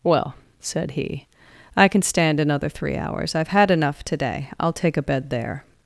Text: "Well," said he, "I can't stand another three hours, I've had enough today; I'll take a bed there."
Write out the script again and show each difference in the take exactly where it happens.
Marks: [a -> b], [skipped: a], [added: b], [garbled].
"Well," said he, "I [can't -> can] stand another three hours, I've had enough today; I'll take a bed there."